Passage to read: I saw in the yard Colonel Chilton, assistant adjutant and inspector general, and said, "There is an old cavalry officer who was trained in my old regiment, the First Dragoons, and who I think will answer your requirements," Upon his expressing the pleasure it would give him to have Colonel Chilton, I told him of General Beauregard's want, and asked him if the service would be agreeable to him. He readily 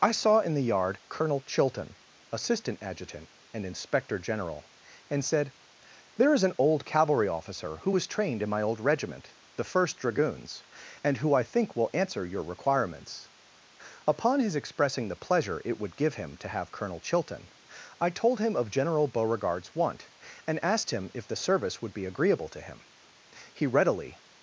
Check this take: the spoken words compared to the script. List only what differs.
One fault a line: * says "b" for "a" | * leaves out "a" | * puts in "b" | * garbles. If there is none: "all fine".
all fine